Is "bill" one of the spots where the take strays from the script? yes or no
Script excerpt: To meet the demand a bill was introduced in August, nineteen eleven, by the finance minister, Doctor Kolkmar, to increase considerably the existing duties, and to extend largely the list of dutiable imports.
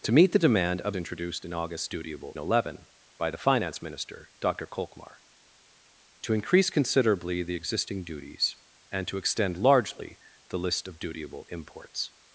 yes